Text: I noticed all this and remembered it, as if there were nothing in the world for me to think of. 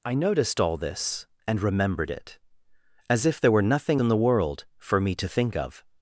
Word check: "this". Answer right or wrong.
right